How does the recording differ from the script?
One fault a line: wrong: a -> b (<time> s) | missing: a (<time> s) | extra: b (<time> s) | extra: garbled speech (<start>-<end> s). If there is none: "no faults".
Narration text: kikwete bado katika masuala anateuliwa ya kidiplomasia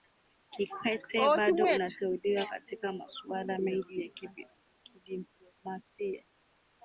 extra: anateuliwa (1.6 s)
wrong: anateuliwa -> mengi (3.6 s)